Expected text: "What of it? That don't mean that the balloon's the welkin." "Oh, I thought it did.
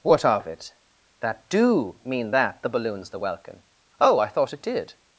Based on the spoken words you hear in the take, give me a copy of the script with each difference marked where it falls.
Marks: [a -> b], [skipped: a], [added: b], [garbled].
"What of it? That [don't -> do] mean that the balloon's the welkin." "Oh, I thought it did.